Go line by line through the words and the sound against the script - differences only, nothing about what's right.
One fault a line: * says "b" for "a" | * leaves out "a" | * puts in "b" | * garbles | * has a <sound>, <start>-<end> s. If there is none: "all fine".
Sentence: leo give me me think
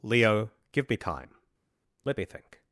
* puts in "time let"